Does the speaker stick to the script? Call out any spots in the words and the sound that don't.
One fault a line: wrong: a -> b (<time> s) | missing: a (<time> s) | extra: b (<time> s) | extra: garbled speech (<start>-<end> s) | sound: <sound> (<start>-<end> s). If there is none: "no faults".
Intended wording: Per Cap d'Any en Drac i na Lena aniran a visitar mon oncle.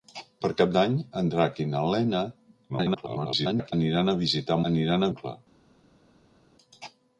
extra: garbled speech (2.7-3.7 s)
wrong: mon -> aniran (4.7 s)